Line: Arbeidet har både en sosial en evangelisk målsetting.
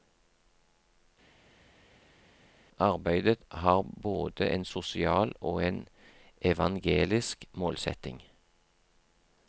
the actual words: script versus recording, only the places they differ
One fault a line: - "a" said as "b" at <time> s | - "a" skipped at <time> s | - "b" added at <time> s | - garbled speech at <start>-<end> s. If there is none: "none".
- "og" added at 5.4 s